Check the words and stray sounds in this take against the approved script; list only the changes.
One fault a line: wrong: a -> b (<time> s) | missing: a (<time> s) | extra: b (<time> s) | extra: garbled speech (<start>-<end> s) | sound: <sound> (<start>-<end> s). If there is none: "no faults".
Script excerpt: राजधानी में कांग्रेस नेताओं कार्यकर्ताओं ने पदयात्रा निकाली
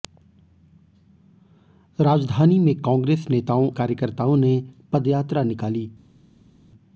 no faults